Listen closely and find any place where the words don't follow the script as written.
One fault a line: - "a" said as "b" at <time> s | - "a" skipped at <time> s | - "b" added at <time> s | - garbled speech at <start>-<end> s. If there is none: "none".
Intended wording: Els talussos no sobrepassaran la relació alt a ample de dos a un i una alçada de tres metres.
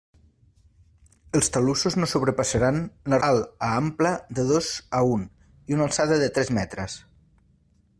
- "relació" skipped at 3.2 s